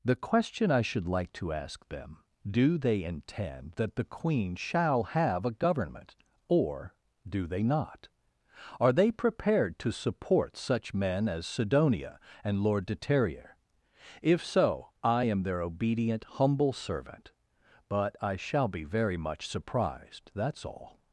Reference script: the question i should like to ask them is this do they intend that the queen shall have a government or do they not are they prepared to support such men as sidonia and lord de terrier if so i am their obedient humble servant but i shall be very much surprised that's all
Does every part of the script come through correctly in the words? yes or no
no